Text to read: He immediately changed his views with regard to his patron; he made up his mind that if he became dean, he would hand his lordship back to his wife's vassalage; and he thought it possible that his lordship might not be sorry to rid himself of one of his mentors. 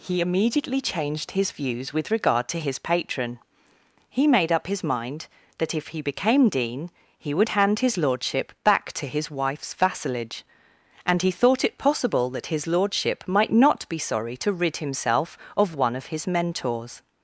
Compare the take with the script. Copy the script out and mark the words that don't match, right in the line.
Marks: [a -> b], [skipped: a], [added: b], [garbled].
He immediately changed his views with regard to his patron; he made up his mind that if he became dean, he would hand his lordship back to his wife's vassalage; and he thought it possible that his lordship might not be sorry to rid himself of one of his mentors.